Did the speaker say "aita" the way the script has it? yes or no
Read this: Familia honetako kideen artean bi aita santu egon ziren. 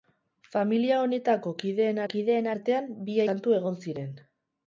no